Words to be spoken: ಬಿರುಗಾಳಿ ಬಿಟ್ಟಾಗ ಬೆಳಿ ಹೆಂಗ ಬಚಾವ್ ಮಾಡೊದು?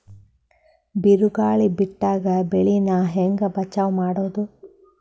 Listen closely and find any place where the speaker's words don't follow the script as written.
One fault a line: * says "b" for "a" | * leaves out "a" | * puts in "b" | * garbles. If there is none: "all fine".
* puts in "ನಾ"